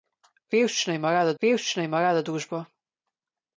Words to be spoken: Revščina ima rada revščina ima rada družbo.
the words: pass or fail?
pass